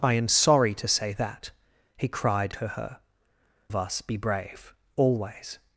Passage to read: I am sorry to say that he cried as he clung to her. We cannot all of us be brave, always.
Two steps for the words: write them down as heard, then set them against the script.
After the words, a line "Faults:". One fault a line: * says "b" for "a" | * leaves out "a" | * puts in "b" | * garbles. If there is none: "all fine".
I am sorry to say that he cried to her. Of us be brave, always.
Faults:
* leaves out "as he clung"
* leaves out "We cannot all"